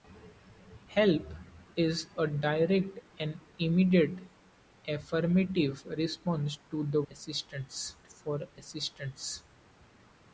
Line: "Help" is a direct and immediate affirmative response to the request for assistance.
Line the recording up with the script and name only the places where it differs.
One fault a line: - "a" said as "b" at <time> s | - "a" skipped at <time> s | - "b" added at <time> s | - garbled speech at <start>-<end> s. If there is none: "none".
- "request" said as "assistance" at 7.1 s